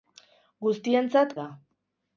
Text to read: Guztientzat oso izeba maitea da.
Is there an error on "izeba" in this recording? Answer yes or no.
yes